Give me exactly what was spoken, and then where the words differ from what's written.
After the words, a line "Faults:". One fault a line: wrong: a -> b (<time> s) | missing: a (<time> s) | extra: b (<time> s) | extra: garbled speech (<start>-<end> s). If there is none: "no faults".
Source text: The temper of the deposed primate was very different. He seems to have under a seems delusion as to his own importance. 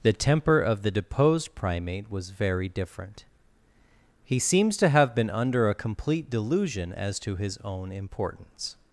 The temper of the deposed primate was very different. He seems to have been under a complete delusion as to his own importance.
Faults:
extra: been (5.1 s)
wrong: seems -> complete (5.7 s)